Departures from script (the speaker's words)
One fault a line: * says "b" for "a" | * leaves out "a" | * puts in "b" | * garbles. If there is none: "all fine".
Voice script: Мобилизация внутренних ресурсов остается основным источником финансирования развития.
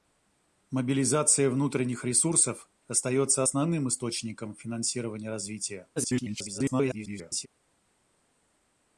* garbles